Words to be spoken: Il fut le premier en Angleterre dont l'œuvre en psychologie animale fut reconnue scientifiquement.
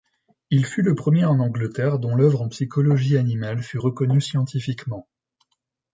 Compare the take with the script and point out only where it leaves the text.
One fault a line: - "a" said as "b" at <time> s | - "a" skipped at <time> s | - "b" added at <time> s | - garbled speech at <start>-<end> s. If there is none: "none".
none